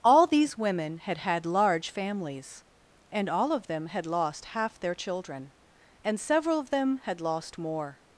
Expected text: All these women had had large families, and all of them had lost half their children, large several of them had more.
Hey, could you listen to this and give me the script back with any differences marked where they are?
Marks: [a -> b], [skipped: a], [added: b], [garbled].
All these women had had large families, and all of them had lost half their children, [large -> and] several of them had [added: lost] more.